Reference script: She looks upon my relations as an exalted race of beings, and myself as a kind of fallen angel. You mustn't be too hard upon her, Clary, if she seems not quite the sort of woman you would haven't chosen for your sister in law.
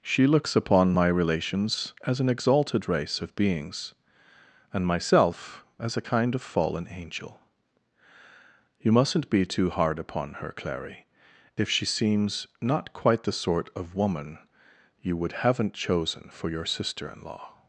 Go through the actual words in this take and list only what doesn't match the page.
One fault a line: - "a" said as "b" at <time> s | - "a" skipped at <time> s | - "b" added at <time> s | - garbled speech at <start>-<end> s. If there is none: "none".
none